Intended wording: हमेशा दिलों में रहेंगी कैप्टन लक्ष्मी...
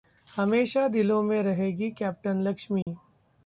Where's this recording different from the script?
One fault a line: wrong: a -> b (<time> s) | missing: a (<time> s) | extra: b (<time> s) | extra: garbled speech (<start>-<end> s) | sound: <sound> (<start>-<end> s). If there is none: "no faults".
sound: dropout (2.8-2.9 s)